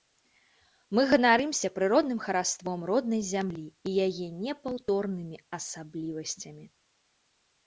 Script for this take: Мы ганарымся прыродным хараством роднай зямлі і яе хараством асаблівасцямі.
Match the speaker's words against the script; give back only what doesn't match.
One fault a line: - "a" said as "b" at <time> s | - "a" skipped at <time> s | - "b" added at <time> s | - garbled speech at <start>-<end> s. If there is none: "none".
- "хараством" said as "непаўторнымі" at 4.4 s